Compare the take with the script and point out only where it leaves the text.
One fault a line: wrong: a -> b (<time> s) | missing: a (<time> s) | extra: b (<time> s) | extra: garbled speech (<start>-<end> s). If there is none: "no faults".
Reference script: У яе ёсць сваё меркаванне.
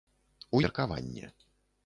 missing: яе ёсць сваё (0.6 s)